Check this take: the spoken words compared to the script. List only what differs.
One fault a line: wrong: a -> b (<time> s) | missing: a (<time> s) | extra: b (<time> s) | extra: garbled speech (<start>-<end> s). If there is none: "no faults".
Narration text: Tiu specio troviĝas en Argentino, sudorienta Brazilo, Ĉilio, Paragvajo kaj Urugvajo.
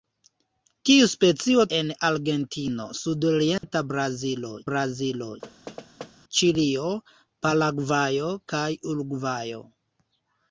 missing: troviĝas (1.6 s)
extra: Brazilo (4.7 s)